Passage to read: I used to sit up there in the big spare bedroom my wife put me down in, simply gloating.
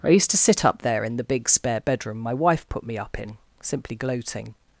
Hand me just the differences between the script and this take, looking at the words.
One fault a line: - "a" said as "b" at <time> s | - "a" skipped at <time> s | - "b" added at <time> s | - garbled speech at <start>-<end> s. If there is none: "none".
- "down" said as "up" at 3.0 s